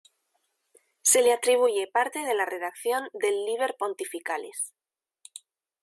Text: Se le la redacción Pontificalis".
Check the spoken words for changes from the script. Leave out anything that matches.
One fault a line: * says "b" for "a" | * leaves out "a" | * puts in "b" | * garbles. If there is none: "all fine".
* puts in "atribuye parte de"
* puts in "del Liber"